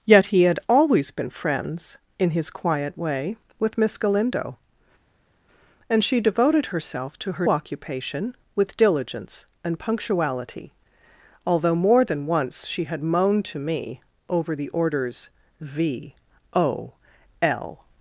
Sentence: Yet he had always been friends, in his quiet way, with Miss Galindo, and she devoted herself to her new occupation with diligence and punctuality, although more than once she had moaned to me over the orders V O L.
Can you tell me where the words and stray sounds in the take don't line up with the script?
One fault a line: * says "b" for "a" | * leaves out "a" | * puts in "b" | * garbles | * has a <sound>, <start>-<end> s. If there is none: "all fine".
* leaves out "new"